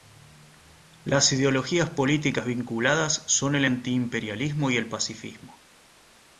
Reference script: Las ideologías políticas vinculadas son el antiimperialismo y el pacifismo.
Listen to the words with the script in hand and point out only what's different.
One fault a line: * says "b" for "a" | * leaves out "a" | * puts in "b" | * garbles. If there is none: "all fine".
all fine